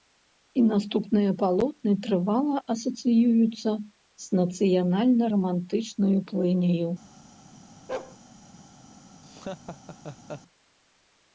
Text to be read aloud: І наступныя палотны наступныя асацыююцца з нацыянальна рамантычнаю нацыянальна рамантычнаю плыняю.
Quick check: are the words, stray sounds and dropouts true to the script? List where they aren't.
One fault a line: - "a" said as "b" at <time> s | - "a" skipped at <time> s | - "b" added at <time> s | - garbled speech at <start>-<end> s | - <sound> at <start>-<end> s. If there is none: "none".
- "наступныя" said as "трывала" at 2.1 s
- "нацыянальна рамантычнаю" skipped at 6.2 s
- bark at 7.9-8.2 s
- laugh at 9.2-10.4 s